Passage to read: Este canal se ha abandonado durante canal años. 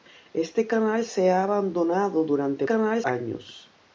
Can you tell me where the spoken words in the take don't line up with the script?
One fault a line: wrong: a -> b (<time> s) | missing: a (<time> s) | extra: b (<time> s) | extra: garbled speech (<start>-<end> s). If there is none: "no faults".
no faults